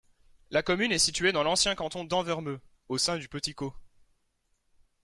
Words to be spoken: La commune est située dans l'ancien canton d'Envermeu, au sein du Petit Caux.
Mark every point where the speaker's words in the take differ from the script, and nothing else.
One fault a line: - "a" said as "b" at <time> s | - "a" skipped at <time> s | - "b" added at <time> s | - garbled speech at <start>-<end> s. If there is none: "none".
none